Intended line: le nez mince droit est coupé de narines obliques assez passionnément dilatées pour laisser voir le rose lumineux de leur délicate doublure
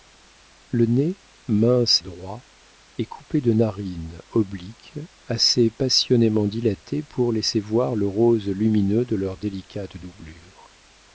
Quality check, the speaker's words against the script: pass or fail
pass